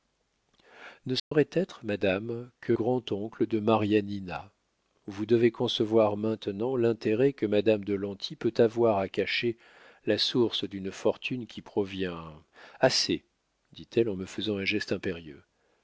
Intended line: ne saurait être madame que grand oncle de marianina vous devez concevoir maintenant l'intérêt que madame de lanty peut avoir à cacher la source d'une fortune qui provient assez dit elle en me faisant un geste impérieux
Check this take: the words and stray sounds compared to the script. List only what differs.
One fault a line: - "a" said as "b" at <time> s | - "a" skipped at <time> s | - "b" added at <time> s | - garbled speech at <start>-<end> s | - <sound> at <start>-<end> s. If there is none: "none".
- dropout at 1.2-1.3 s